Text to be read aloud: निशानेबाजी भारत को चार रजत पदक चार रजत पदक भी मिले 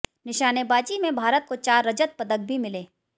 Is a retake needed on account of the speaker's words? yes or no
yes